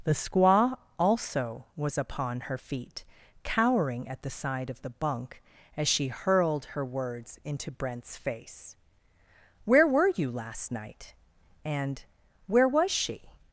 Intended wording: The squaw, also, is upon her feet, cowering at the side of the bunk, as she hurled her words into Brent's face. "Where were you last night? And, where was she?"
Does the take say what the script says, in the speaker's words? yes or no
no